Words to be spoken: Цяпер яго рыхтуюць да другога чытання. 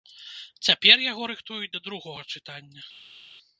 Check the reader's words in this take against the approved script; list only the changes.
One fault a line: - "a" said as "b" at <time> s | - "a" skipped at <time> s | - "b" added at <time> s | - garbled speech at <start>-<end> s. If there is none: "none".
none